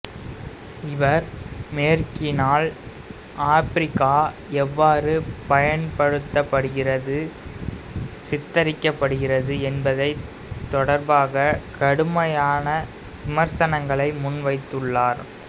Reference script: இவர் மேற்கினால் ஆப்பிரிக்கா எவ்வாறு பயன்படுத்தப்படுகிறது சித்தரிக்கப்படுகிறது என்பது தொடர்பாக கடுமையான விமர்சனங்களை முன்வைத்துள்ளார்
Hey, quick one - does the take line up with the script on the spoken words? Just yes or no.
yes